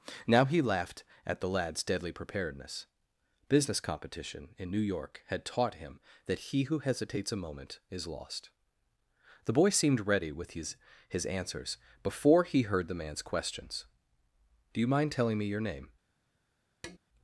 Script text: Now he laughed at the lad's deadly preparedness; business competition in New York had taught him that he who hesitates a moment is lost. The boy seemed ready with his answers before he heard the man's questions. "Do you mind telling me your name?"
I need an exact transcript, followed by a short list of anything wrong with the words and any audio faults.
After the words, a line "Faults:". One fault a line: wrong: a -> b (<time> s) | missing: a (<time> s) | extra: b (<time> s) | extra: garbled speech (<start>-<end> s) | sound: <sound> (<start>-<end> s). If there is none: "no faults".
Now he laughed at the lad's deadly preparedness; business competition in New York had taught him that he who hesitates a moment is lost. The boy seemed ready with his his answers before he heard the man's questions. "Do you mind telling me your name?"
Faults:
extra: his (11.1 s)
sound: tap (16.8-17.0 s)